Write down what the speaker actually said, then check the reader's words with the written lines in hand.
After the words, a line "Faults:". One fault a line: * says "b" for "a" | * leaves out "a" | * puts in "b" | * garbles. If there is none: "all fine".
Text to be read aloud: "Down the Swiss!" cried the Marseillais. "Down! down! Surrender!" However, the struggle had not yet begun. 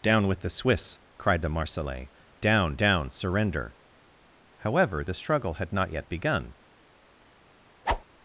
"Down with the Swiss!" cried the Marseillais. "Down! down! Surrender!" However, the struggle had not yet begun.
Faults:
* puts in "with"